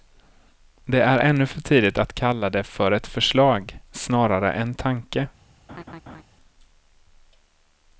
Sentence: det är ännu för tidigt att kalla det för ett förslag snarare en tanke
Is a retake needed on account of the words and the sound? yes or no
yes